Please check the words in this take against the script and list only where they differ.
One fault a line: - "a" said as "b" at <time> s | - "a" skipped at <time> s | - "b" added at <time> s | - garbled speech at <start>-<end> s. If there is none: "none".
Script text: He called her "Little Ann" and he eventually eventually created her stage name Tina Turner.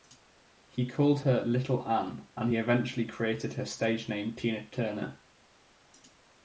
- "eventually" skipped at 3.0 s